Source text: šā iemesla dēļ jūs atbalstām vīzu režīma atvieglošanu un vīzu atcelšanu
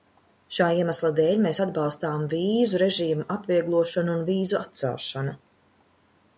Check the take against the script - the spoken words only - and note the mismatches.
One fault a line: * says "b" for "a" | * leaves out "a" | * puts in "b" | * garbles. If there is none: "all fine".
* says "mēs" for "jūs"